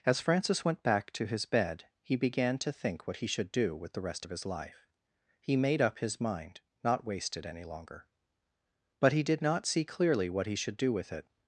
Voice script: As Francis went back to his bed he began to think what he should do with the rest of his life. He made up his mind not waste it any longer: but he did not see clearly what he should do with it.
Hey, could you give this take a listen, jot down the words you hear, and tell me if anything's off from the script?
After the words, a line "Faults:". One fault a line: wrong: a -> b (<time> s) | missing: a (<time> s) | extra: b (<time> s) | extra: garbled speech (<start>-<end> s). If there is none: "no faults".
As Francis went back to his bed he began to think what he should do with the rest of his life. He made up his mind not waste it any longer: but he did not see clearly what he should do with it.
Faults:
no faults